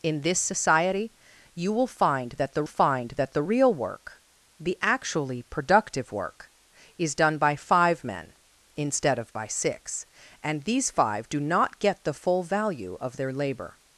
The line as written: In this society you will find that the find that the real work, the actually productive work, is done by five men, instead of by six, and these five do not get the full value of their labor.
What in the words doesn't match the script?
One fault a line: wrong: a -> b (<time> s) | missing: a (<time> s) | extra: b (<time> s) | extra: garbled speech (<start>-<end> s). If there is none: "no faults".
no faults